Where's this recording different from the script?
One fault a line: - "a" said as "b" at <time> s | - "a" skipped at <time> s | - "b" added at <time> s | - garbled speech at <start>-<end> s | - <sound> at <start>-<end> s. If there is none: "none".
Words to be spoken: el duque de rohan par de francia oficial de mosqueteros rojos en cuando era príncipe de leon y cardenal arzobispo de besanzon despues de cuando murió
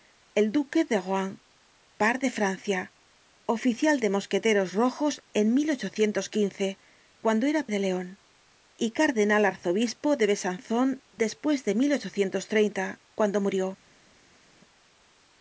- "príncipe" skipped at 7.7 s